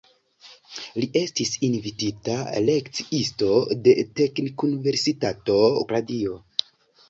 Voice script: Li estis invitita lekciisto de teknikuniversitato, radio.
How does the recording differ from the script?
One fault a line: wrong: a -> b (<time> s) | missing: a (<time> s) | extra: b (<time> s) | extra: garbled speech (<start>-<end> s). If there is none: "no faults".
no faults